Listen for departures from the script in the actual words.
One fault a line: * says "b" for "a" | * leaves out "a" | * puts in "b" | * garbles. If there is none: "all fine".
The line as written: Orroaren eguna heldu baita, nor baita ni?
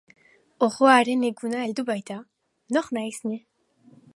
* says "naiz" for "baita"